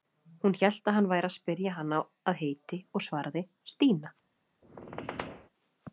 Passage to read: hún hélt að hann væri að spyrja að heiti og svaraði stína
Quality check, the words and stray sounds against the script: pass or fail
fail